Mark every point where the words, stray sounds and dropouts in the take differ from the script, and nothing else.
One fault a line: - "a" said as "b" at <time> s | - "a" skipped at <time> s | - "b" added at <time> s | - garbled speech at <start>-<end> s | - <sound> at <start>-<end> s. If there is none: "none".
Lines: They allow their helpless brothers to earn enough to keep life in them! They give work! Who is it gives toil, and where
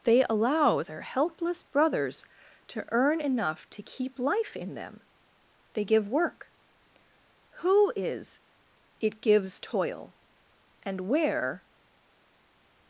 none